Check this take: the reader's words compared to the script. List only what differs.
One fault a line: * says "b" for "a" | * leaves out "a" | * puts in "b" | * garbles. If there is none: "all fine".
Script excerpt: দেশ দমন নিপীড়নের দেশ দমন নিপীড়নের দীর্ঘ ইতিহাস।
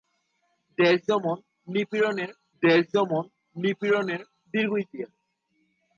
all fine